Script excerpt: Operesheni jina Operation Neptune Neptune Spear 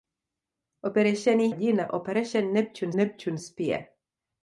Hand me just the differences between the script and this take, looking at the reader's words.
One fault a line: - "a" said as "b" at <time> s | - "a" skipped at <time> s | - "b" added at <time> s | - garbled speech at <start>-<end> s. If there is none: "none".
none